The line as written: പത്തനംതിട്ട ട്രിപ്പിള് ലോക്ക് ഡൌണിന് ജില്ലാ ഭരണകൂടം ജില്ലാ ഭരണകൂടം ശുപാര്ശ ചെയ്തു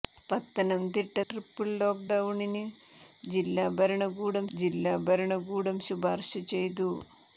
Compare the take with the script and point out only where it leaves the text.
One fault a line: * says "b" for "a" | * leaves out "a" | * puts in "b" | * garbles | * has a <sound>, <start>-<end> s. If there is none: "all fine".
all fine